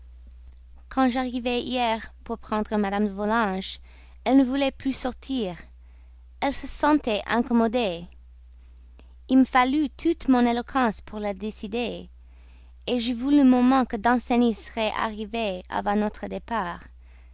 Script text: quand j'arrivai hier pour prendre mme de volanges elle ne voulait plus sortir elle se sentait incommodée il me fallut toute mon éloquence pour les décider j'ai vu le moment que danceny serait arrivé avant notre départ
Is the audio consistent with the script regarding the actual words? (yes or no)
no